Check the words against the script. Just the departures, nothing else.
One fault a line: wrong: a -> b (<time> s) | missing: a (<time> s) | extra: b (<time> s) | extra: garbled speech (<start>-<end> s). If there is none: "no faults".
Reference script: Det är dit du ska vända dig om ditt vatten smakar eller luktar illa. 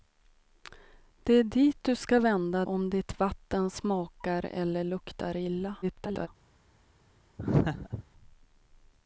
missing: dig (2.6 s)
extra: garbled speech (5.8-6.3 s)